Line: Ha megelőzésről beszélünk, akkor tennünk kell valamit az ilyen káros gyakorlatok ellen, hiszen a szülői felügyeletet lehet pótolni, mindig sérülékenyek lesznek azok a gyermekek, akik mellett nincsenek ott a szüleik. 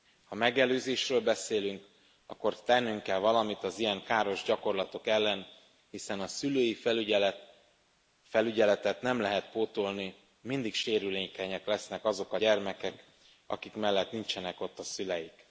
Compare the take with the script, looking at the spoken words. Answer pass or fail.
fail